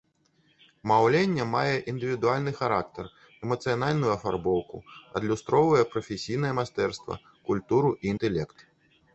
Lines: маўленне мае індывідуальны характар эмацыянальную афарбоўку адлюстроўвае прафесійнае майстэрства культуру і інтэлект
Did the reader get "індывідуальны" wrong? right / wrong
right